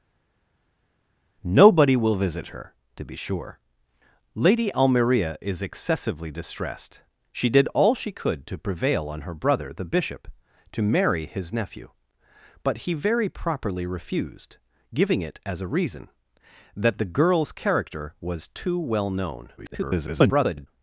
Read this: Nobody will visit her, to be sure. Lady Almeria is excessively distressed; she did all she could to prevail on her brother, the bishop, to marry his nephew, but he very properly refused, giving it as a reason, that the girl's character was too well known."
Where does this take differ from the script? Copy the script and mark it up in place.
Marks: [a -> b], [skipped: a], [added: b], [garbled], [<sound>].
Nobody will visit her, to be sure. Lady Almeria is excessively distressed; she did all she could to prevail on her brother, the bishop, to marry his nephew, but he very properly refused, giving it as a reason, that the girl's character was too well known." [garbled]